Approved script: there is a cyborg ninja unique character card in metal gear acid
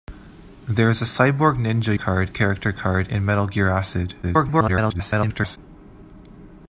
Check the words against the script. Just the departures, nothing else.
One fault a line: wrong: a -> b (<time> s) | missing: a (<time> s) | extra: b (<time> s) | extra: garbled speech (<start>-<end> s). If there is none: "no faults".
wrong: unique -> card (1.9 s)
extra: garbled speech (4.2-5.6 s)